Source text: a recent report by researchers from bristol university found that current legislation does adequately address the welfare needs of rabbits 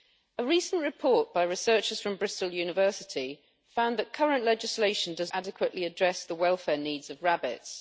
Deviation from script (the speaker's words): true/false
false